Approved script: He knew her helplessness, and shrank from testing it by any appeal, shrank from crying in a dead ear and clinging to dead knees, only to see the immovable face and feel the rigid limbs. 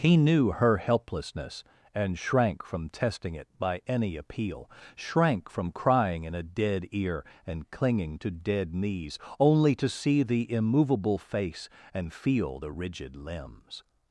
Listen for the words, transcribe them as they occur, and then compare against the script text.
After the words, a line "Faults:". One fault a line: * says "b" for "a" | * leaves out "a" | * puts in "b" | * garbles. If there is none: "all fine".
He knew her helplessness, and shrank from testing it by any appeal, shrank from crying in a dead ear and clinging to dead knees, only to see the immovable face and feel the rigid limbs.
Faults:
all fine